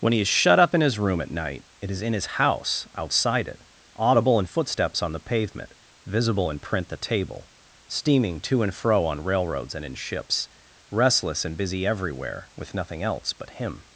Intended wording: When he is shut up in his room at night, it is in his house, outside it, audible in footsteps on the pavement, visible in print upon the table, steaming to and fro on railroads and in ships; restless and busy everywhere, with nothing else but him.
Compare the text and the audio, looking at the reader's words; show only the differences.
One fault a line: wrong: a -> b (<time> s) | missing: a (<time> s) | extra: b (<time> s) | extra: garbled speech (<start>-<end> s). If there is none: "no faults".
missing: upon (6.9 s)